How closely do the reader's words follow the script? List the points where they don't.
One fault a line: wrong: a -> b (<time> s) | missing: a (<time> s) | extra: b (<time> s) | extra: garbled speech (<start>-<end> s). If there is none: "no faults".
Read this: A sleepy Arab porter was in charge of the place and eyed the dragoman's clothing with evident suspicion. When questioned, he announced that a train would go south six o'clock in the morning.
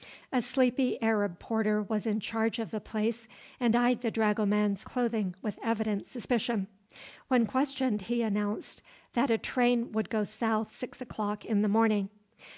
no faults